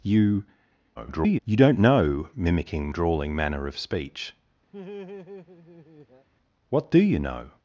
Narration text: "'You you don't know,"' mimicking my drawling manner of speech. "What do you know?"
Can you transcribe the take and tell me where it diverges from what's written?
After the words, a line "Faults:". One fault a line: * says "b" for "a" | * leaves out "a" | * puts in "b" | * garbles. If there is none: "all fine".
"'You [garbled] you don't know,"' mimicking drawling manner of speech. "What do you know?"
Faults:
* garbles
* leaves out "my"